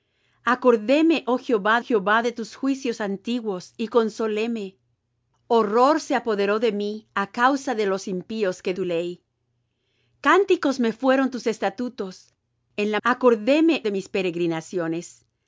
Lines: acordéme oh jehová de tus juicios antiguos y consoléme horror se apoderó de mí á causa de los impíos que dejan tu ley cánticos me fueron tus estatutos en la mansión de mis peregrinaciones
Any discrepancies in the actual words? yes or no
yes